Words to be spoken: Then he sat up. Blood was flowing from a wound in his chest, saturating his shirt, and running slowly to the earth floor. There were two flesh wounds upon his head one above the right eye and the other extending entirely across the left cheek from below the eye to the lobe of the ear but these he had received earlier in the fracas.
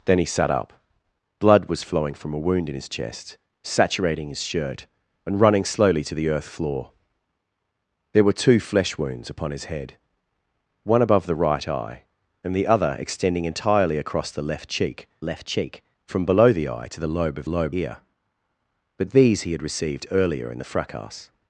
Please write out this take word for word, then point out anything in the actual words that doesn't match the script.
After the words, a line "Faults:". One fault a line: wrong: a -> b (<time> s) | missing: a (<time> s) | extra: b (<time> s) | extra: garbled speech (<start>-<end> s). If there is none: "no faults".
Then he sat up. Blood was flowing from a wound in his chest, saturating his shirt, and running slowly to the earth floor. There were two flesh wounds upon his head one above the right eye and the other extending entirely across the left cheek left cheek from below the eye to the lobe of lobe ear but these he had received earlier in the fracas.
Faults:
extra: left cheek (15.2 s)
wrong: the -> lobe (17.4 s)